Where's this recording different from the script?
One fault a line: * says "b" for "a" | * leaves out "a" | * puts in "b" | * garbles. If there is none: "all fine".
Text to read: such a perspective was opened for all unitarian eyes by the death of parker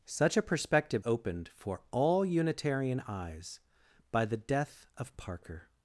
* leaves out "was"